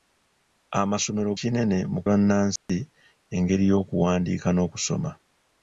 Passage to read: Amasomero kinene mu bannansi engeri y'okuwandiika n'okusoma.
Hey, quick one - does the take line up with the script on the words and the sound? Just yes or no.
no